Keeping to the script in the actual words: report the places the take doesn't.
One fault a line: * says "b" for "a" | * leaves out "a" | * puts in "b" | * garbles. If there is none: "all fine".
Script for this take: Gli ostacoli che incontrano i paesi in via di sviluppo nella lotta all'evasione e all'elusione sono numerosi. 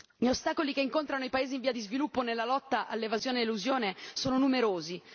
all fine